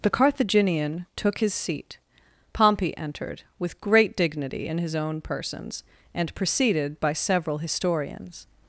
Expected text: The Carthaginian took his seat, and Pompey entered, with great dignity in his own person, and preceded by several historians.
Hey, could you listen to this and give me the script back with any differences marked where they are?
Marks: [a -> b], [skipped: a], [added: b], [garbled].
The Carthaginian took his seat, [skipped: and] Pompey entered, with great dignity in his own [person, -> persons] and preceded by several historians.